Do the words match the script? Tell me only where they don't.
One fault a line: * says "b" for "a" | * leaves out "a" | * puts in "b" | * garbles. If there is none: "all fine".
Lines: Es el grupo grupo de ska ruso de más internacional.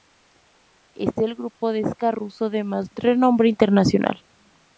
* leaves out "grupo"
* puts in "renombre"